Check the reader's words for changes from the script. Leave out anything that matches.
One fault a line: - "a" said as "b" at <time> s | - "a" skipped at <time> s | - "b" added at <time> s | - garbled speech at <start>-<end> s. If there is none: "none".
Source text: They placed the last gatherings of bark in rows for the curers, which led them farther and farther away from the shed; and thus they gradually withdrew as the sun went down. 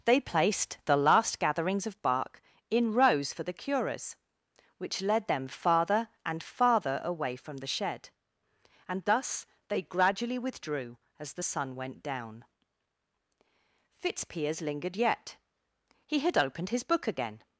- "Fitzpiers lingered yet He had opened his book again" added at 14.0 s